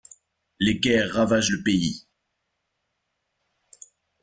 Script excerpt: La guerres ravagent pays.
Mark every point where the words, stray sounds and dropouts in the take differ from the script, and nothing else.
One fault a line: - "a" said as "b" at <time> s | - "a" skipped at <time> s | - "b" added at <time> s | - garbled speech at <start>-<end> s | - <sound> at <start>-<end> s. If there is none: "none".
- "La" said as "Les" at 0.6 s
- "le" added at 1.5 s